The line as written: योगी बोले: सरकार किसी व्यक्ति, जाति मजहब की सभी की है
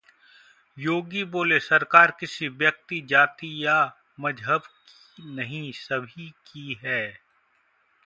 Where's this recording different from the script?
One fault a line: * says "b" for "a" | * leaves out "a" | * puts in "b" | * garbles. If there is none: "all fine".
* puts in "या"
* puts in "नहीं"